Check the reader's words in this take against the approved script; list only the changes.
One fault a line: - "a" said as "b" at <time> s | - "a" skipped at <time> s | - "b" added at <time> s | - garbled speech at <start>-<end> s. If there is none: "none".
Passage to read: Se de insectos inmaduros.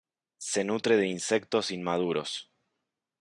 - "nutre" added at 0.6 s